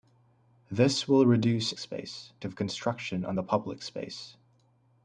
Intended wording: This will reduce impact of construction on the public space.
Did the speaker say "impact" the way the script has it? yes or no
no